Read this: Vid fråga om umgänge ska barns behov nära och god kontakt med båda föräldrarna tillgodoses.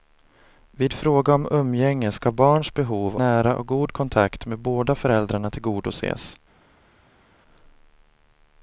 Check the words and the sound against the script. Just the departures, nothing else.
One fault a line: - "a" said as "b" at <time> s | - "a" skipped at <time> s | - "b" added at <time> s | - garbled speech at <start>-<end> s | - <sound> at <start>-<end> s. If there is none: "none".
none